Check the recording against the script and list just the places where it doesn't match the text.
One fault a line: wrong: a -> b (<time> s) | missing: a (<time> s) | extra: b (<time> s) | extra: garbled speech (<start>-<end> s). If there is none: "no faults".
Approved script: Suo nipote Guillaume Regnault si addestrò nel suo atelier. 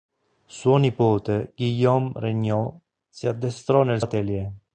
missing: suo (4.0 s)